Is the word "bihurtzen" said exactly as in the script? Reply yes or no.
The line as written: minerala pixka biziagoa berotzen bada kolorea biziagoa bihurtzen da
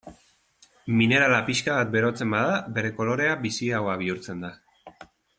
yes